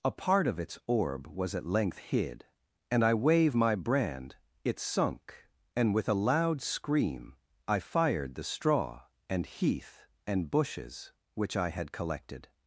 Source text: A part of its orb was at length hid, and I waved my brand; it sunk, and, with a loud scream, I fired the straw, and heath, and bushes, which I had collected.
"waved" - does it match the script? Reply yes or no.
no